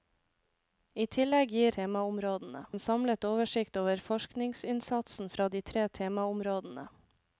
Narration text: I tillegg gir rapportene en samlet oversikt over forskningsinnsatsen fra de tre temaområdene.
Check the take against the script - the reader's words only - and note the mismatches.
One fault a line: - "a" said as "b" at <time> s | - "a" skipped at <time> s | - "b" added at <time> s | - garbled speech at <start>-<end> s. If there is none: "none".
- "rapportene" said as "temaområdene" at 1.8 s